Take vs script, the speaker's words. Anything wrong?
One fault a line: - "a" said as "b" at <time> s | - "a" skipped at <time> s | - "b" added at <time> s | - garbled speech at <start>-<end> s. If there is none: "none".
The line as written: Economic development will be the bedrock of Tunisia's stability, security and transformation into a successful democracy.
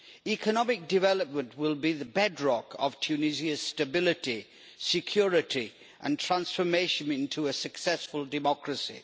none